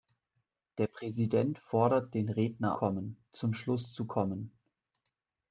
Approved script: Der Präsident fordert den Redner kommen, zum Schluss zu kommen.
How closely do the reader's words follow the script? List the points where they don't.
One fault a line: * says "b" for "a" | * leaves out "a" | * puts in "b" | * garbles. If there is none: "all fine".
all fine